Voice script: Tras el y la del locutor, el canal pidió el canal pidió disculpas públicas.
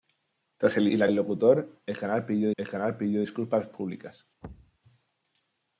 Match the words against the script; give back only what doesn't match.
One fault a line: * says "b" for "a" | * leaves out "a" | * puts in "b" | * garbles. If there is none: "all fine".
all fine